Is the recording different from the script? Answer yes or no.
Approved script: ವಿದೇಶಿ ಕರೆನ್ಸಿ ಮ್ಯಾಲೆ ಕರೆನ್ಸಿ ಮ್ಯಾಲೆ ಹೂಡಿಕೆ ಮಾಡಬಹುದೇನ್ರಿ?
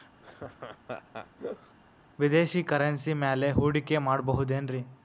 yes